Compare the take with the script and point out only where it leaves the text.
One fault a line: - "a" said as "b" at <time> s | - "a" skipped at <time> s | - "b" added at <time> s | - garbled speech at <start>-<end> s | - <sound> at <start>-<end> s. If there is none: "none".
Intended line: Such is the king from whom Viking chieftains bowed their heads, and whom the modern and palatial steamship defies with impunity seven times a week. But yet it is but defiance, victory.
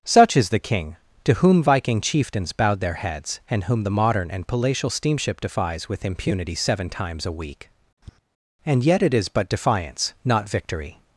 - "from" said as "to" at 1.2 s
- tap at 8.0-8.2 s
- "But" said as "And" at 8.6 s
- "not" added at 10.2 s